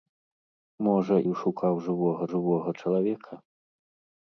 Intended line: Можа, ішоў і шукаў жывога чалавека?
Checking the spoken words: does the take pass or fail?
fail